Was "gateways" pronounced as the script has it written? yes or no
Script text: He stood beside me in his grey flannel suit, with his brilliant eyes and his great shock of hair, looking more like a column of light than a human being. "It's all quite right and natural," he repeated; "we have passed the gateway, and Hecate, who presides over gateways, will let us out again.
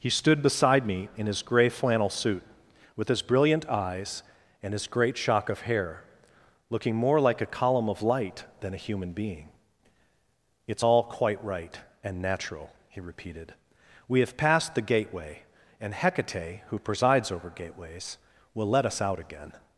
yes